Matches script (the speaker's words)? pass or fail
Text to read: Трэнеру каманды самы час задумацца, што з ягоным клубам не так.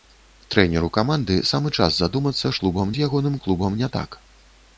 fail